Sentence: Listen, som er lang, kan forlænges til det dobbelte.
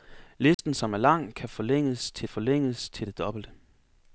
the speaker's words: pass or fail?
fail